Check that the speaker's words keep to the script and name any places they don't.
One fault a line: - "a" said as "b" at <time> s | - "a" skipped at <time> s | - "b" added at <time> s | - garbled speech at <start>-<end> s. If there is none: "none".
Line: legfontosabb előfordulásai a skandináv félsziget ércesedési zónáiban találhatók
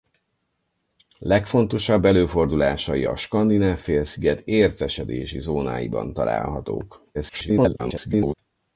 - garbled speech at 7.1-8.3 s